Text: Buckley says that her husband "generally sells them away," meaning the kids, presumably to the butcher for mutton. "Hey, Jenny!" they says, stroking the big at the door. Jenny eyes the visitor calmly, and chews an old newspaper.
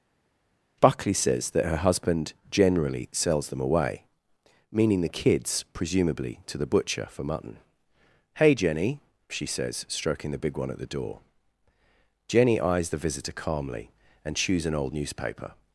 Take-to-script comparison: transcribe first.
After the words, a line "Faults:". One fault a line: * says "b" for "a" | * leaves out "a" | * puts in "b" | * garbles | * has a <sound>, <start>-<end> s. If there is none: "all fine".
Buckley says that her husband "generally sells them away," meaning the kids, presumably to the butcher for mutton. "Hey, Jenny!" she says, stroking the big one at the door. Jenny eyes the visitor calmly, and chews an old newspaper.
Faults:
* says "she" for "they"
* puts in "one"